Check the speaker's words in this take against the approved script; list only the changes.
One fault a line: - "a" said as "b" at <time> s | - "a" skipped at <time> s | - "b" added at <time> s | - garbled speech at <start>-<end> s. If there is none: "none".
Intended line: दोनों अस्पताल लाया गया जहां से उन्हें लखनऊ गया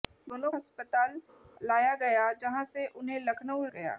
none